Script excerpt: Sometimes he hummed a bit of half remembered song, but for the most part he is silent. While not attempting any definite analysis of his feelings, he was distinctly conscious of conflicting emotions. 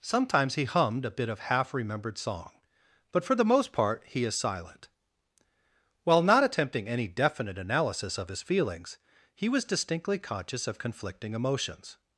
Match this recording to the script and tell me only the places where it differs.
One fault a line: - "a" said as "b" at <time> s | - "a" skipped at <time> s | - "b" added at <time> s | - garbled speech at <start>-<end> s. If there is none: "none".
none